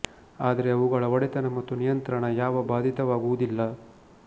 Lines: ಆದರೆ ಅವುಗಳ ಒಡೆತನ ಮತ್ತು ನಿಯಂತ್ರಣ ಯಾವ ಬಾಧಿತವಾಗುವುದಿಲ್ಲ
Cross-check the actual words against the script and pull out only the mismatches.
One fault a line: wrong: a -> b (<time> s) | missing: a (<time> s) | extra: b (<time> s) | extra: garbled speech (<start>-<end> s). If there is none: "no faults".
no faults